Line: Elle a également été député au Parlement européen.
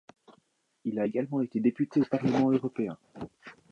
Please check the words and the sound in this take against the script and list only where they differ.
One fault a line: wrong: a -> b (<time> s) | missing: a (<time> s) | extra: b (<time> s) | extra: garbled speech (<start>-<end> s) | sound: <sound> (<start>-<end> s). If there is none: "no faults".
wrong: Elle -> Il (0.8 s)